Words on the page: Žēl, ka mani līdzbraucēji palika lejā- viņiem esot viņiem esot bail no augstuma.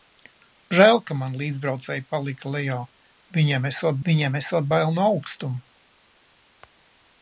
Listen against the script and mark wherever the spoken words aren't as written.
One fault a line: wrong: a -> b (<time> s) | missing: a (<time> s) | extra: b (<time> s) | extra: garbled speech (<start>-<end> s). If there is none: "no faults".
no faults